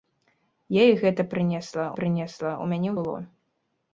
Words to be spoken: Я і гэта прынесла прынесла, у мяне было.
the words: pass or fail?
pass